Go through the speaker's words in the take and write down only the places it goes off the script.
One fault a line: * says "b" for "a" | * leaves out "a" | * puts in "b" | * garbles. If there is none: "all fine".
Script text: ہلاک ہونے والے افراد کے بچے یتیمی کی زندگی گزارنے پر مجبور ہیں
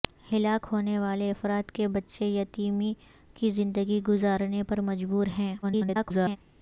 * garbles